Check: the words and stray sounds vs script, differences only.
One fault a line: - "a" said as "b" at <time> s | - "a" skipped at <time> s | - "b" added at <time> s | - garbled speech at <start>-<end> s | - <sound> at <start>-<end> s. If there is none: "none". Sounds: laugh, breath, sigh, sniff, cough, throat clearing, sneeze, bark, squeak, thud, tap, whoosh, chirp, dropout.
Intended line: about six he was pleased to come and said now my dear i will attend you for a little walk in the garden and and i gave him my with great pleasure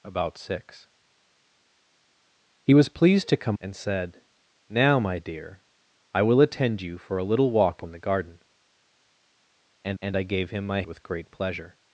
none